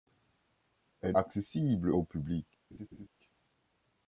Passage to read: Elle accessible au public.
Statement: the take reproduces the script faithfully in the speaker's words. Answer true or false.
true